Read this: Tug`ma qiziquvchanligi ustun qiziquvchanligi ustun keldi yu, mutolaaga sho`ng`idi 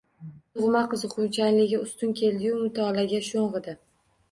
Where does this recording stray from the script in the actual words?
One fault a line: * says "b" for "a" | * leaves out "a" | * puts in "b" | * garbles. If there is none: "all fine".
* leaves out "qiziquvchanligi ustun"